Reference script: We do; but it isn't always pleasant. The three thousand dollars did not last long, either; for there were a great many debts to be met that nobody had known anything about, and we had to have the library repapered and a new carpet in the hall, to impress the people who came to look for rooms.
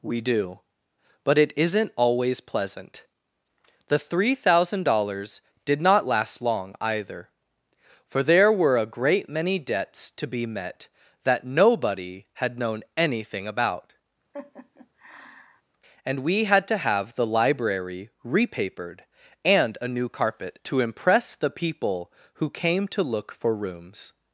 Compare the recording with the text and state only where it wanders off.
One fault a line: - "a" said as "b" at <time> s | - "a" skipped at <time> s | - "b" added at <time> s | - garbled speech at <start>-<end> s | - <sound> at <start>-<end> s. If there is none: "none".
- laugh at 14.3-15.6 s
- "in the hall" skipped at 20.6 s